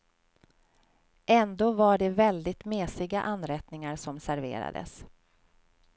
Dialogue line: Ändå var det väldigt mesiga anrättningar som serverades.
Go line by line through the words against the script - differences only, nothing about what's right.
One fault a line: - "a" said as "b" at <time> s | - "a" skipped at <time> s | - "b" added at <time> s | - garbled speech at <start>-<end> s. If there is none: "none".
none